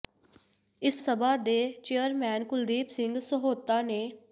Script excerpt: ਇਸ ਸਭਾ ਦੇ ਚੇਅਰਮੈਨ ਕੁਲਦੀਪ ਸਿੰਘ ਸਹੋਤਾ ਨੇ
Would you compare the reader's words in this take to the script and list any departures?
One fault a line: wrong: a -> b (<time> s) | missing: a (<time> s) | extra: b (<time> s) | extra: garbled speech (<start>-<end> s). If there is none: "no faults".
no faults